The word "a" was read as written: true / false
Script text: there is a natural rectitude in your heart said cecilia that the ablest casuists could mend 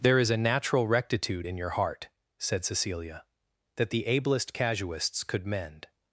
true